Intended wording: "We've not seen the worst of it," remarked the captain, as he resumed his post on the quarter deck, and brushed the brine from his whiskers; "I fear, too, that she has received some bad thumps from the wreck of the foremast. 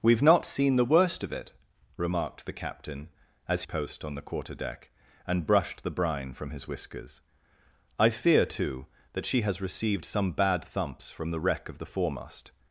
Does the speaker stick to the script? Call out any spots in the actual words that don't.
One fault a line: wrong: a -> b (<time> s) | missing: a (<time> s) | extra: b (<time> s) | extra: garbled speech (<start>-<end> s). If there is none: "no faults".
missing: he resumed his (3.6 s)